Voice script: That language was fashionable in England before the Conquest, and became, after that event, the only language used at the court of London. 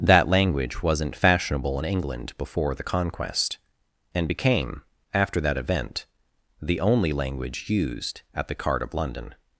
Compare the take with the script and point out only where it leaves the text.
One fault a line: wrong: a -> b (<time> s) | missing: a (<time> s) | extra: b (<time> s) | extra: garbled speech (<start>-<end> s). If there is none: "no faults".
wrong: was -> wasn't (0.8 s)
wrong: court -> cart (8.6 s)